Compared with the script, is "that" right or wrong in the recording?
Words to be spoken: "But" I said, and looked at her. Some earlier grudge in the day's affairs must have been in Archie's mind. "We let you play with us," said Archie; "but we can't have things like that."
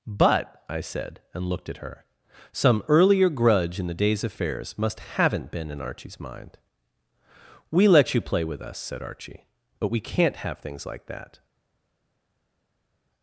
right